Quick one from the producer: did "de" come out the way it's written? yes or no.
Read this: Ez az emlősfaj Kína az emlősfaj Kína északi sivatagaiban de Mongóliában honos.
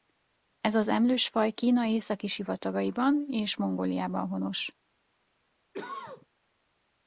no